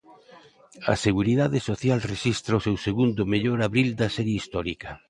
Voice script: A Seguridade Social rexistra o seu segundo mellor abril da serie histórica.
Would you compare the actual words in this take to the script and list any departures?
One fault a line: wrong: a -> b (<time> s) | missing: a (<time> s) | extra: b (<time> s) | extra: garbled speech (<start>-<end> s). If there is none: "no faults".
no faults